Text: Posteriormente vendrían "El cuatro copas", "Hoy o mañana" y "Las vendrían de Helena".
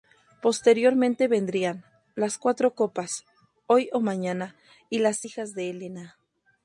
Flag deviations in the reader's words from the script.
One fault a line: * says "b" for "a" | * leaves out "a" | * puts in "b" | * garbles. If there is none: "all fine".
* says "Las" for "El"
* says "hijas" for "vendrían"